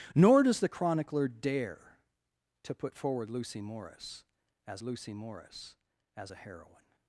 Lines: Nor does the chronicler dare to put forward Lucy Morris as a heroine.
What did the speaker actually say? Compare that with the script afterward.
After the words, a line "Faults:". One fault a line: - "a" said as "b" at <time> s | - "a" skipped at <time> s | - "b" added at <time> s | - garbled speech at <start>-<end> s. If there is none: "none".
Nor does the chronicler dare to put forward Lucy Morris as Lucy Morris as a heroine.
Faults:
- "Lucy Morris as" added at 4.8 s